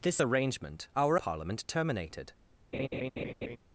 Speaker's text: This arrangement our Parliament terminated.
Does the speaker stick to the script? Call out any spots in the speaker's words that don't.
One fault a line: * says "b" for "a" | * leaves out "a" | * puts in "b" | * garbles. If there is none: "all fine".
all fine